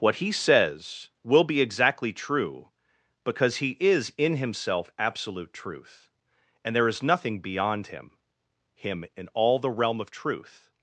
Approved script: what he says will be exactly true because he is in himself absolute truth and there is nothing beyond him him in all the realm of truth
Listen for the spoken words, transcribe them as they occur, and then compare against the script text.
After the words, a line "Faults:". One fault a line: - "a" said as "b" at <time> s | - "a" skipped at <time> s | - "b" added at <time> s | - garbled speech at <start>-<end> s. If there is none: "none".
what he says will be exactly true because he is in himself absolute truth and there is nothing beyond him him in all the realm of truth
Faults:
none